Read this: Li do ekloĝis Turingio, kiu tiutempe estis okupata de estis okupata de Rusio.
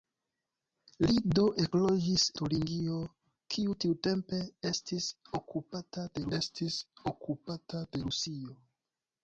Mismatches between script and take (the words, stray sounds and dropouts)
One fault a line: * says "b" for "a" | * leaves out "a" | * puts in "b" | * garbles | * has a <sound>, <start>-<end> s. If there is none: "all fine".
all fine